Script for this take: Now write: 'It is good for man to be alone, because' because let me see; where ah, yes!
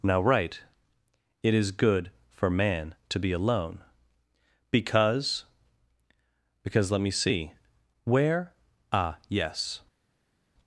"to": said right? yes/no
yes